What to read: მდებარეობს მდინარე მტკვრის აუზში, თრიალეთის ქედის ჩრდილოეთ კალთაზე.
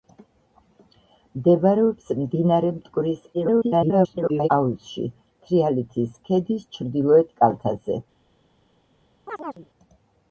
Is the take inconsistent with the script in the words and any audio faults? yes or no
yes